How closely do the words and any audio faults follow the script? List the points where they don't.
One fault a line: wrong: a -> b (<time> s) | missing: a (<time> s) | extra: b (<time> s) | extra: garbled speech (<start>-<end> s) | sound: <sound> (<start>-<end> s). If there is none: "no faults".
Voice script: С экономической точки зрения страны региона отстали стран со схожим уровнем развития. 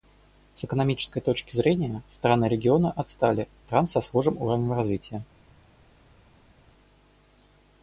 no faults